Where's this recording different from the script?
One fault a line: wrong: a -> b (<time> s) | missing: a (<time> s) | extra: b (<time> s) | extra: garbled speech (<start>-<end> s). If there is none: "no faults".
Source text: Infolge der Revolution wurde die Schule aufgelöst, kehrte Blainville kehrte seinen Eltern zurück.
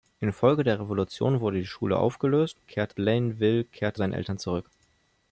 no faults